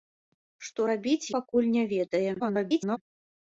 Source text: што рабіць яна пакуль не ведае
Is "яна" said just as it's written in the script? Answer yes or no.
no